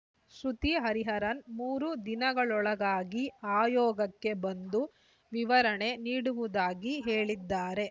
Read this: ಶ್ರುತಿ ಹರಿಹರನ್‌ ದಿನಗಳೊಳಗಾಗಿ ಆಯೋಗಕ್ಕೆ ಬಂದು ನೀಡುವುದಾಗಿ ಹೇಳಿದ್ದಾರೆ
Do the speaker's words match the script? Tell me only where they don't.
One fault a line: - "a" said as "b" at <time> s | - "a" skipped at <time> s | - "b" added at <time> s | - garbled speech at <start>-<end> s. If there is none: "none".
- "ಮೂರು" added at 1.6 s
- "ವಿವರಣೆ" added at 5.3 s